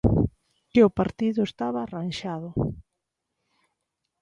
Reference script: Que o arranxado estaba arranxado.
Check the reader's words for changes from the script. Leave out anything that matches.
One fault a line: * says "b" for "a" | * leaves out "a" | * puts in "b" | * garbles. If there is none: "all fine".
* says "partido" for "arranxado"